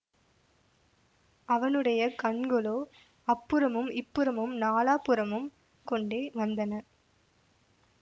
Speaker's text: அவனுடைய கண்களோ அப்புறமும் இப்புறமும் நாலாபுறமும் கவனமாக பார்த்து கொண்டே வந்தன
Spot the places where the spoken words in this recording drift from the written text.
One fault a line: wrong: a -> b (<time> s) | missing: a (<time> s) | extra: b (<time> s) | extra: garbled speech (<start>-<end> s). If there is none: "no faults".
missing: கவனமாக பார்த்து (5.5 s)